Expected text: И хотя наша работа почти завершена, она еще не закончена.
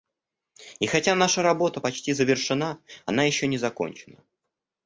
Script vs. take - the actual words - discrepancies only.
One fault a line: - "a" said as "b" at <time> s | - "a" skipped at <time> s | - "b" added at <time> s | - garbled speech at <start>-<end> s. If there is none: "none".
none